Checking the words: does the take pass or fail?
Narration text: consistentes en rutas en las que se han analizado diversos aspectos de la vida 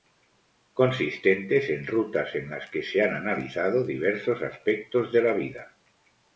pass